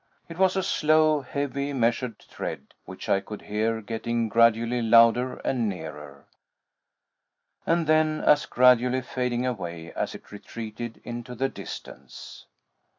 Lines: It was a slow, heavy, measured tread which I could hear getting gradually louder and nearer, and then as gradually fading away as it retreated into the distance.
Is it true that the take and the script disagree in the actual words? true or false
false